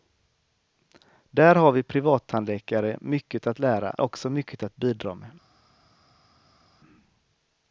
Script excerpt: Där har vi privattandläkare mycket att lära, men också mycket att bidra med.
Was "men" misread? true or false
true